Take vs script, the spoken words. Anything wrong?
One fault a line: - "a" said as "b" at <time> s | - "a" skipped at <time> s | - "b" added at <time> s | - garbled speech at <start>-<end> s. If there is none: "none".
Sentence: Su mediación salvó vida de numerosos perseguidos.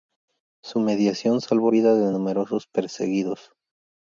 none